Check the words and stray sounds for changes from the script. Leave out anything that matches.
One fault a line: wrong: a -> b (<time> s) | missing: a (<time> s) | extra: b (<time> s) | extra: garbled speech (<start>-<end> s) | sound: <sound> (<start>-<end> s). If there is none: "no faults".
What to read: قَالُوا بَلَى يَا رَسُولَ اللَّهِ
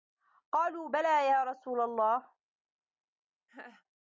sound: laugh (3.5-3.8 s)